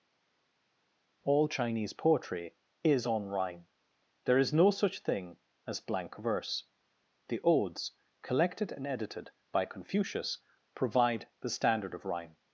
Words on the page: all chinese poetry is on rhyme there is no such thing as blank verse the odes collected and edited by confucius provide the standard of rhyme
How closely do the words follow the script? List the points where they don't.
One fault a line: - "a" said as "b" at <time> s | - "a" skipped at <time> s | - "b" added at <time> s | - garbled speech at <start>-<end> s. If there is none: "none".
none